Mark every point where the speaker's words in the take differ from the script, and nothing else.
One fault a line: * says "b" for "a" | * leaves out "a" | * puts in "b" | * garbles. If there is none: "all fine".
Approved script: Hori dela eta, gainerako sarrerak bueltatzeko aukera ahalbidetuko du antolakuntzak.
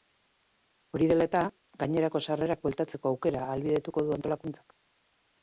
all fine